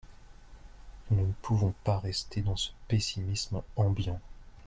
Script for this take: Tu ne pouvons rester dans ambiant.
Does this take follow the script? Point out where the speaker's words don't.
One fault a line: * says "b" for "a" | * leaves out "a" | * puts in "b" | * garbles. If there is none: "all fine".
* says "Nous" for "Tu"
* puts in "pas"
* puts in "ce pessimisme"